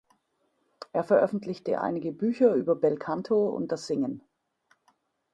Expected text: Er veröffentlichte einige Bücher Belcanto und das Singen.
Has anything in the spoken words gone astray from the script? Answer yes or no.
yes